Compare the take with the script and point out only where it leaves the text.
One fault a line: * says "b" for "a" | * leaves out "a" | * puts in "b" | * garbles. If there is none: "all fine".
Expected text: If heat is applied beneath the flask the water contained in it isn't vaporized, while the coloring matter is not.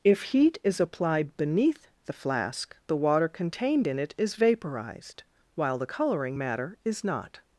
* says "is" for "isn't"